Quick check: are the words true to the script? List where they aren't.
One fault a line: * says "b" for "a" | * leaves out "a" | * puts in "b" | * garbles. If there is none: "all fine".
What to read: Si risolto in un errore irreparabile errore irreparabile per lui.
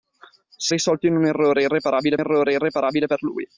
all fine